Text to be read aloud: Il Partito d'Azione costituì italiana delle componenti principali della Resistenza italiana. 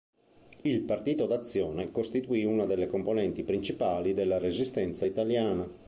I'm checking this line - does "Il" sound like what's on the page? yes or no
yes